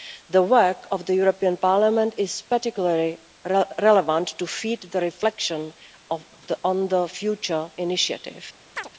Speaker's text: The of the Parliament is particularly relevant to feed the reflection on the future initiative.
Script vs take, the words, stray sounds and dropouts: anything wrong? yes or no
yes